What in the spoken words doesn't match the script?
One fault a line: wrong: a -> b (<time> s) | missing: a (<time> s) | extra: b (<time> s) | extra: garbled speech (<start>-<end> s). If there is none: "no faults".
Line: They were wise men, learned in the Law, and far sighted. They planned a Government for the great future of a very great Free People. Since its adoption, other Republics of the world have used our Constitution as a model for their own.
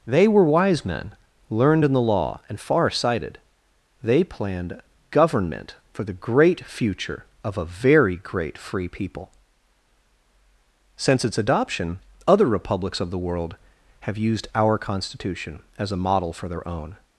missing: a (4.8 s)